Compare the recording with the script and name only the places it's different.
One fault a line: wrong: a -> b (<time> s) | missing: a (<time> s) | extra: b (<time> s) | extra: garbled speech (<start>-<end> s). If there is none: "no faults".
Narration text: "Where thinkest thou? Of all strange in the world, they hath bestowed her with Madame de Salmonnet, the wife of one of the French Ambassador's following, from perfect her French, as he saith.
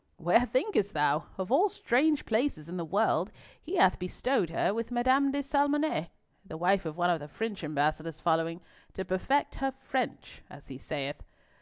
extra: places (2.2 s)
wrong: they -> he (3.6 s)
wrong: from -> to (8.9 s)